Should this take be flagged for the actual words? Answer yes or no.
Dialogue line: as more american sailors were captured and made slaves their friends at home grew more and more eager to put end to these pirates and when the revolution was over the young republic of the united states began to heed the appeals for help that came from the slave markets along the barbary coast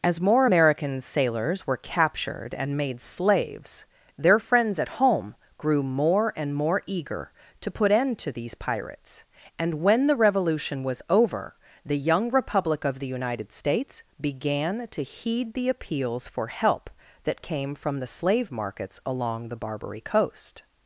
no